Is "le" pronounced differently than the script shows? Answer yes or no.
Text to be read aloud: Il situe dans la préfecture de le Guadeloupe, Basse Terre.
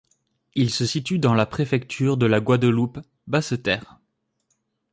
yes